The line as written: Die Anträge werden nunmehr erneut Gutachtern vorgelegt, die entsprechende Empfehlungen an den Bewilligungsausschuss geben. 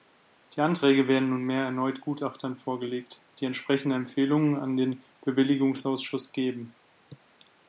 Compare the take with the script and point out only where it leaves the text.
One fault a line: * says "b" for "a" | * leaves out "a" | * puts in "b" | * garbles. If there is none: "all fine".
all fine